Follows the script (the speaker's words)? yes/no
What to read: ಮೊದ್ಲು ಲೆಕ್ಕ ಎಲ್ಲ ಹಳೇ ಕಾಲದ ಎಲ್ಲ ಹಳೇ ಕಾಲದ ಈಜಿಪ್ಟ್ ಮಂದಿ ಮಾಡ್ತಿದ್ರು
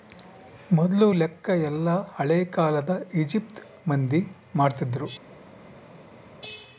no